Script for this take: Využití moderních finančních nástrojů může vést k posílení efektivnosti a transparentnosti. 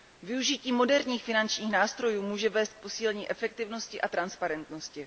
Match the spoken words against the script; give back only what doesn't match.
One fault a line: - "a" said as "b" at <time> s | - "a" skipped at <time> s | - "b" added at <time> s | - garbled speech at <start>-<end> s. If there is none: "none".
none